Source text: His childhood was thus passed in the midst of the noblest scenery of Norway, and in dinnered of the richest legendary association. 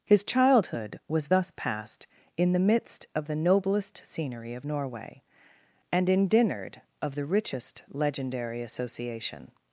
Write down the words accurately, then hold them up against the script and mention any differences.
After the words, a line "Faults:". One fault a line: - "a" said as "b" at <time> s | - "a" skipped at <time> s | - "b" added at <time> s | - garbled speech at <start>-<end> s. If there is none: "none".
His childhood was thus passed in the midst of the noblest scenery of Norway, and in dinnered of the richest legendary association.
Faults:
none